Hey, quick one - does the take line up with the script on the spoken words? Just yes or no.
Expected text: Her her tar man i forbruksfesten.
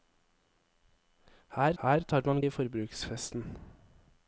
yes